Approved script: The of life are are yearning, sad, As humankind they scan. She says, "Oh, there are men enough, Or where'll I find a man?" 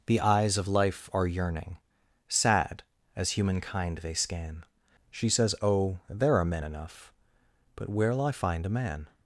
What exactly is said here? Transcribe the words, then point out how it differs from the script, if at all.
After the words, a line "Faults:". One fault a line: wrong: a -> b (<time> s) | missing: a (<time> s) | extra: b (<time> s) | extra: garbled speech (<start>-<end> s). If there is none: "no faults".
The eyes of life are yearning, sad, As humankind they scan. She says, "Oh, there are men enough, But where'll I find a man?"
Faults:
extra: eyes (0.2 s)
missing: are (1.3 s)
wrong: Or -> But (7.7 s)